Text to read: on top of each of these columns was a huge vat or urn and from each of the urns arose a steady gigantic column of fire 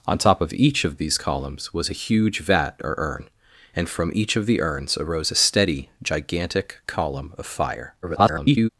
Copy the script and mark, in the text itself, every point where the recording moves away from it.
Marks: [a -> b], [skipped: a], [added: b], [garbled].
on top of each of these columns was a huge vat or urn and from each of the urns arose a steady gigantic column of fire [garbled]